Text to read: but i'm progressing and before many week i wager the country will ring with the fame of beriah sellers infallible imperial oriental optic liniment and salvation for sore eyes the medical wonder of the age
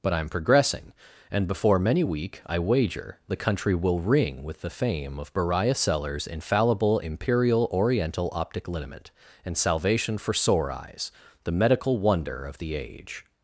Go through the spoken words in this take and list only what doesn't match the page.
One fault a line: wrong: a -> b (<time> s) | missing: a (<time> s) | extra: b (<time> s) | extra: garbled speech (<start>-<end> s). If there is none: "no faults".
no faults